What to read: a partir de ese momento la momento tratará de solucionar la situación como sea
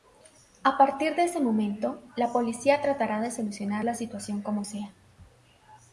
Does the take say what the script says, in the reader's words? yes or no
no